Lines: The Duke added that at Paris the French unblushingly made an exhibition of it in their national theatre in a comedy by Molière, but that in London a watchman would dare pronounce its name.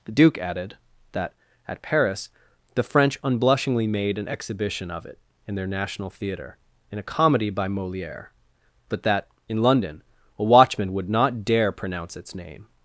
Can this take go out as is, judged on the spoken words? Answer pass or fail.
fail